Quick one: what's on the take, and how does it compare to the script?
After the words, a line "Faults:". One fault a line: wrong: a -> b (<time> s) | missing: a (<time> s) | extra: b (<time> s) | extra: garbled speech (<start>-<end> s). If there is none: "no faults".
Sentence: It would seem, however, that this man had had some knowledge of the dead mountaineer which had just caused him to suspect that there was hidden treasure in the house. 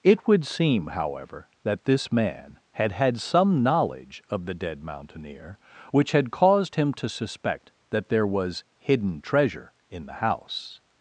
It would seem, however, that this man had had some knowledge of the dead mountaineer which had caused him to suspect that there was hidden treasure in the house.
Faults:
missing: just (6.3 s)